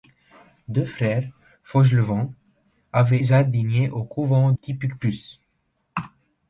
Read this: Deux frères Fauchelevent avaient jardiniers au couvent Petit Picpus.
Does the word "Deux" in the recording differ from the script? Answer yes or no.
no